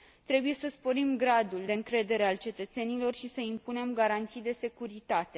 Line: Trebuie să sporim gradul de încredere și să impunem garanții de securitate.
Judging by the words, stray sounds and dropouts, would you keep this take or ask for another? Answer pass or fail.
fail